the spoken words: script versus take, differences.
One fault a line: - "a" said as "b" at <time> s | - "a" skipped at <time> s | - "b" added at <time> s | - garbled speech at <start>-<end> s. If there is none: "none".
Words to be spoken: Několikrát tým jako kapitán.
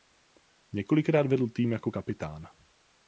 - "vedl" added at 1.3 s